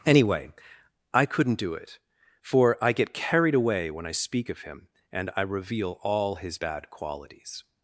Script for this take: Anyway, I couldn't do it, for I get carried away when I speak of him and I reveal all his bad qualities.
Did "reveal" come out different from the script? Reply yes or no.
no